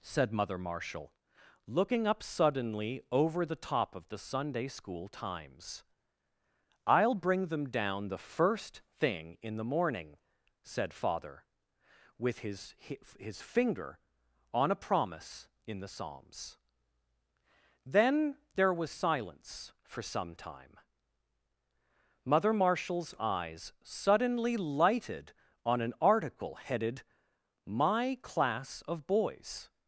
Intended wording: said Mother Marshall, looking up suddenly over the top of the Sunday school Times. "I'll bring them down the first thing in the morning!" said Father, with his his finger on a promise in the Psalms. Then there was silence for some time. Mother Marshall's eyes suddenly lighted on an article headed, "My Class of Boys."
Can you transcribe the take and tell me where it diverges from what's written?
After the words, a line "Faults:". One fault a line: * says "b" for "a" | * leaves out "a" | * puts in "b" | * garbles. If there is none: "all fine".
said Mother Marshall, looking up suddenly over the top of the Sunday school Times. "I'll bring them down the first thing in the morning!" said Father, with his his finger on a promise in the Psalms. Then there was silence for some time. Mother Marshall's eyes suddenly lighted on an article headed, "My Class of Boys."
Faults:
all fine